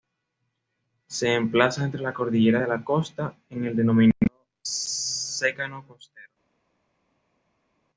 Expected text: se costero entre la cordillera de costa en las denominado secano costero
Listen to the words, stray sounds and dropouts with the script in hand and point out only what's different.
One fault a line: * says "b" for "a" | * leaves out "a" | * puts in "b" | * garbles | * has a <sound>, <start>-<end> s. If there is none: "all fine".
* says "emplaza" for "costero"
* puts in "la"
* says "el" for "las"